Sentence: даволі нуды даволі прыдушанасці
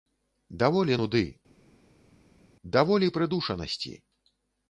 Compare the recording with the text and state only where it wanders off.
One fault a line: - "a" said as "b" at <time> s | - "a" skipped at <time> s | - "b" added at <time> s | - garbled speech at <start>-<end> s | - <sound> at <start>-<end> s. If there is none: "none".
none